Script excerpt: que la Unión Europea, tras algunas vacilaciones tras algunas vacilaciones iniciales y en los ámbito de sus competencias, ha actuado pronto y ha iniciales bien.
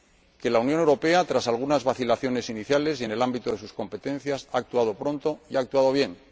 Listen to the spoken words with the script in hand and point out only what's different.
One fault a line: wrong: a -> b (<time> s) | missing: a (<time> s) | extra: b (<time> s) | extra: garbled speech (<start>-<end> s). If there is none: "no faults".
missing: tras algunas vacilaciones (2.5 s)
wrong: los -> el (3.1 s)
wrong: iniciales -> actuado (5.6 s)